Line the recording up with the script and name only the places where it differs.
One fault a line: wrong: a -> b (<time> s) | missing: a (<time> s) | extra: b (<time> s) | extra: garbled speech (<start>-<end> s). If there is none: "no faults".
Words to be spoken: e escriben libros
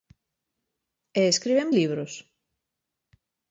no faults